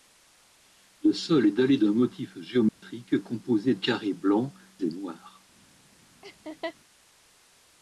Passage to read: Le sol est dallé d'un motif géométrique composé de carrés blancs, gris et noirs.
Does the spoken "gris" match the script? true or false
false